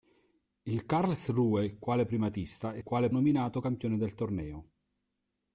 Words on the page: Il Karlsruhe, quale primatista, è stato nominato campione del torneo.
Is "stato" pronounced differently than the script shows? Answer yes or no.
yes